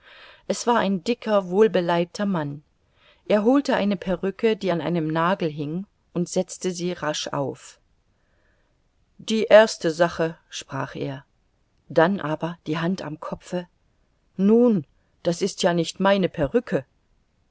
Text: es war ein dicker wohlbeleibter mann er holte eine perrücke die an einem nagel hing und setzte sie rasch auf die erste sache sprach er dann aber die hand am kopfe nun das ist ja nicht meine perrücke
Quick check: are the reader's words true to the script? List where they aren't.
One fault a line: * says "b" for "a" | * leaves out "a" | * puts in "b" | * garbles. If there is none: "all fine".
all fine